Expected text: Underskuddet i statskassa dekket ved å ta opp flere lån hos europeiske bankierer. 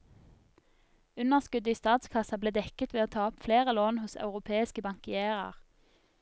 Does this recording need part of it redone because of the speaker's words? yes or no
yes